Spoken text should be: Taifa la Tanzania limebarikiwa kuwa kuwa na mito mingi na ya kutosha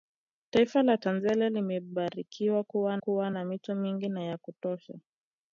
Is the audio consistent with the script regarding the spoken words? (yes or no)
yes